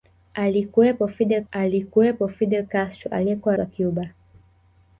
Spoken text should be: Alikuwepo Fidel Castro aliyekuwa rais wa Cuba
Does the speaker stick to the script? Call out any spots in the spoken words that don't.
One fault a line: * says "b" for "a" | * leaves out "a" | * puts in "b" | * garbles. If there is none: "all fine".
* puts in "alikuwepo Fidel"
* leaves out "rais"